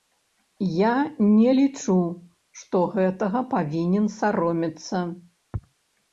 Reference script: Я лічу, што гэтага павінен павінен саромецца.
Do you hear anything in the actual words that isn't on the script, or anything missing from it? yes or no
yes